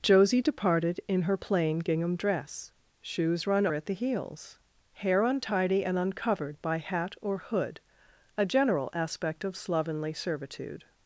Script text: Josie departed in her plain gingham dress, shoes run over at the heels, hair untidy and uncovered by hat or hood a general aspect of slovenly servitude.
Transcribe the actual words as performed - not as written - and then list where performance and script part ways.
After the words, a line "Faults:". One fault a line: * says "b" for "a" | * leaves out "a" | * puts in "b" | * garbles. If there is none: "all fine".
Josie departed in her plain gingham dress, shoes run at the heels, hair untidy and uncovered by hat or hood a general aspect of slovenly servitude.
Faults:
* leaves out "over"